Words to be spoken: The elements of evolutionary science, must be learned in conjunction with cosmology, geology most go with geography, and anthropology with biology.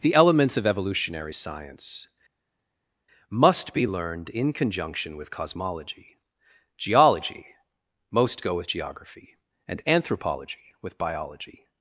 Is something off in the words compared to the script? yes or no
no